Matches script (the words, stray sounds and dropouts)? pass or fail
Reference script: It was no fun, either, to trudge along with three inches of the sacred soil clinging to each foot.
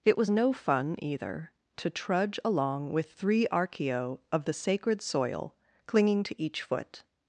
fail